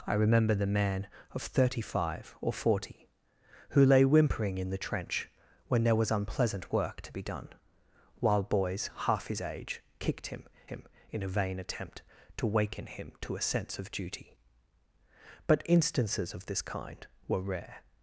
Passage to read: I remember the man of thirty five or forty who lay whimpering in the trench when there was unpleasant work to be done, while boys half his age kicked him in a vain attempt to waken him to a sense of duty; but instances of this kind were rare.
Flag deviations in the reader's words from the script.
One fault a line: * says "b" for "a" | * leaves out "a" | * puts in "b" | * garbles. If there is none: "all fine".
* puts in "him"